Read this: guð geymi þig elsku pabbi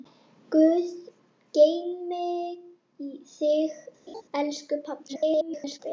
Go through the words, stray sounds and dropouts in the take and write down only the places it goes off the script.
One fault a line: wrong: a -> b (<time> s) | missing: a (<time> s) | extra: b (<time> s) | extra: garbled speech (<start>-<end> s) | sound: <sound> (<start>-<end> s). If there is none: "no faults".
sound: laugh (4.1-4.2 s)
extra: garbled speech (5.1-5.8 s)